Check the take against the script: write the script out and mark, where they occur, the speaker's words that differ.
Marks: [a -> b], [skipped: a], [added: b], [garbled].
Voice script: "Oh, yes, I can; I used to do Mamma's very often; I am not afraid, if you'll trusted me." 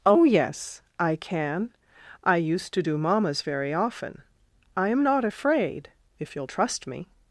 "Oh, yes, I can; I used to do Mamma's very often; I am not afraid, if you'll [trusted -> trust] me."